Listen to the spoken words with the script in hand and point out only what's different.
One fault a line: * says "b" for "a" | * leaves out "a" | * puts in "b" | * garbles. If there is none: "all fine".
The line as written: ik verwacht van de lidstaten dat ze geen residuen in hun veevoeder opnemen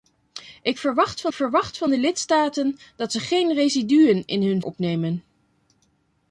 * puts in "verwacht van"
* leaves out "veevoeder"